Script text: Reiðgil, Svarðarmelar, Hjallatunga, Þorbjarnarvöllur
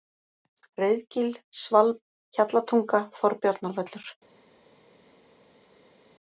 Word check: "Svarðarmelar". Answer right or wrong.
wrong